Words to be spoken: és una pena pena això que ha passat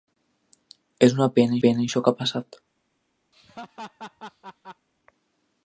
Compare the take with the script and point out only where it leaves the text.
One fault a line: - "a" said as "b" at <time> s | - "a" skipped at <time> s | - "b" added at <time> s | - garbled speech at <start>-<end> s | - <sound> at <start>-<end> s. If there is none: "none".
- laugh at 3.3-4.9 s